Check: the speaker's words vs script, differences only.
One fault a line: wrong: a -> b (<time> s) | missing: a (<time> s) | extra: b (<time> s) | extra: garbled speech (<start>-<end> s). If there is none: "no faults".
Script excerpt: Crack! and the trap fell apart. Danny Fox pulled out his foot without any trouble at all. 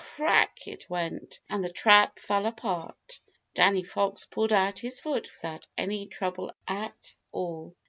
extra: it went (0.7 s)